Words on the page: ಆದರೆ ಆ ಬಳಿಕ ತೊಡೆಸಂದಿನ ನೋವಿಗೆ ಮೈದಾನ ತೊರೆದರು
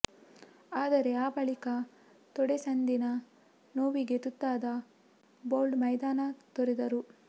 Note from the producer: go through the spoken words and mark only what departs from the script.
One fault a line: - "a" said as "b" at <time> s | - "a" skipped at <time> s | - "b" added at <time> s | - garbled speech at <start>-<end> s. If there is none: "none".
- "ತುತ್ತಾದ ಬೌಲ್ಟ್" added at 4.2 s